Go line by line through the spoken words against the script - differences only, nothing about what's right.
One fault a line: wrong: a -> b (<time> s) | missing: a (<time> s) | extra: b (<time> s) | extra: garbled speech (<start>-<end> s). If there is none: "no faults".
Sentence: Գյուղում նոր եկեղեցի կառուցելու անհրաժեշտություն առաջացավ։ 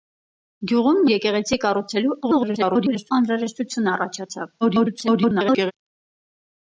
missing: նոր (1.0 s)
extra: garbled speech (2.2-3.1 s)
extra: garbled speech (4.6-5.7 s)